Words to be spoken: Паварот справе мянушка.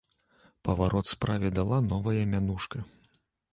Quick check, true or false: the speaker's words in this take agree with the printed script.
false